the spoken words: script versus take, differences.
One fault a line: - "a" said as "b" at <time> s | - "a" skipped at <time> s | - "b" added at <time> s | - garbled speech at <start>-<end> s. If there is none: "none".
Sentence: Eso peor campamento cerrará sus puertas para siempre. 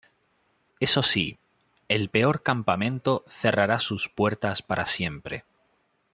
- "sí el" added at 1.0 s